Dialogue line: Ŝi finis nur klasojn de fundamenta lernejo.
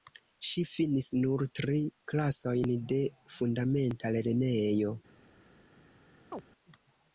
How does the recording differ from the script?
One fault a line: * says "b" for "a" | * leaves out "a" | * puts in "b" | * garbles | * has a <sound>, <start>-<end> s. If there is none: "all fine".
* puts in "tri"
* has a chirp, 6.3-6.4 s